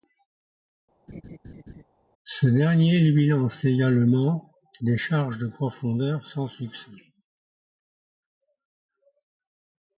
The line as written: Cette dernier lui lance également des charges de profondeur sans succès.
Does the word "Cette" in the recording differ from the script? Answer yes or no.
yes